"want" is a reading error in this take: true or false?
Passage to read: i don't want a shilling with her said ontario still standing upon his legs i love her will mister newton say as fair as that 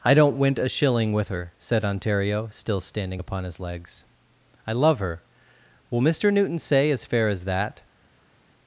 true